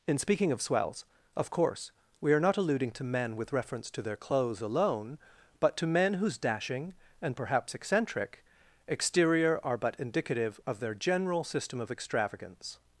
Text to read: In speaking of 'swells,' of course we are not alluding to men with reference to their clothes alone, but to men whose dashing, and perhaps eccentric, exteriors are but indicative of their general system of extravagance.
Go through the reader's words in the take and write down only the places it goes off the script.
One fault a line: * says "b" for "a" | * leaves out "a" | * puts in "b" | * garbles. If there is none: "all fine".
* says "exterior" for "exteriors"